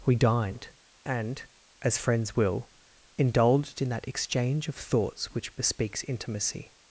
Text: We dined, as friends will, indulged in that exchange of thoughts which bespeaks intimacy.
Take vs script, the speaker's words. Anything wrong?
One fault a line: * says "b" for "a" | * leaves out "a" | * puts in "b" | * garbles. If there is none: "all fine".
* puts in "and"